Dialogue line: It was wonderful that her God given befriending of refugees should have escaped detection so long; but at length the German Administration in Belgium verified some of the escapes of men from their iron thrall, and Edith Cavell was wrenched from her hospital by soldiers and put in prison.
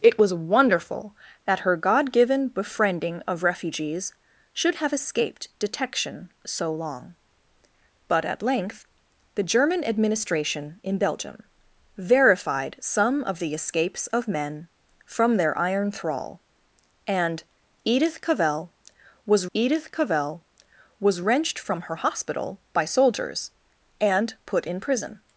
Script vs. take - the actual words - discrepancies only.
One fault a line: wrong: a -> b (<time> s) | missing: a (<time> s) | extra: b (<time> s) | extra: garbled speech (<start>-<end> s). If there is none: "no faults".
extra: Edith Cavell was (19.5 s)